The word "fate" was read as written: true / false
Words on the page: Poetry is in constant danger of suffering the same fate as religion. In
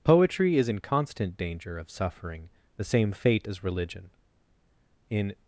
true